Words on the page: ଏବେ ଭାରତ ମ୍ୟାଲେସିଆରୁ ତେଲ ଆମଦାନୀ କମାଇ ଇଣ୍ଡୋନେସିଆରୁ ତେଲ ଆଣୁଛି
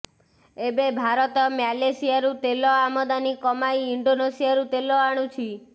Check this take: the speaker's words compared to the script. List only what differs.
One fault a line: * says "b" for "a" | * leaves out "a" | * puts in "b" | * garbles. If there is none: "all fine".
all fine